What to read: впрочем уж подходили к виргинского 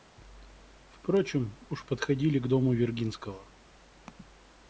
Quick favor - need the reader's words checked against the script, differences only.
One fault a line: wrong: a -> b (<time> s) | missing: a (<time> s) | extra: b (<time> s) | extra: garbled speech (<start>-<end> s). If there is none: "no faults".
extra: дому (2.5 s)